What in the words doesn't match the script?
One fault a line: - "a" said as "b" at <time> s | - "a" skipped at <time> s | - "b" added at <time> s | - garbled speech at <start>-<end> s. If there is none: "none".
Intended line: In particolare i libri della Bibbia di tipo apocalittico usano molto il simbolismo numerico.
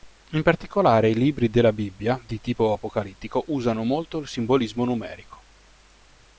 none